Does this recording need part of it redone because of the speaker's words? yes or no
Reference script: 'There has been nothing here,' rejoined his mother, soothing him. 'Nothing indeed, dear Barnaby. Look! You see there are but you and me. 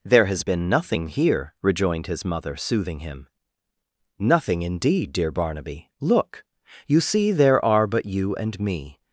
no